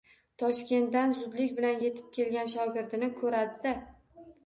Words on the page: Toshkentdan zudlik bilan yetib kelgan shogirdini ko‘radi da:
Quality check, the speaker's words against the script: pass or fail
pass